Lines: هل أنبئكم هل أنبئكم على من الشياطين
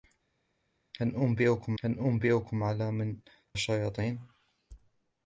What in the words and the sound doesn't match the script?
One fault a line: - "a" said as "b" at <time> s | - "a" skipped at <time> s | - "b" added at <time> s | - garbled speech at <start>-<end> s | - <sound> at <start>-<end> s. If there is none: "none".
none